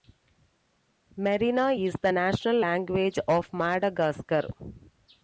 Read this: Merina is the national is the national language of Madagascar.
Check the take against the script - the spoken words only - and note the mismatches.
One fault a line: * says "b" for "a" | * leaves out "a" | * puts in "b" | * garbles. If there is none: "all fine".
* leaves out "is the national"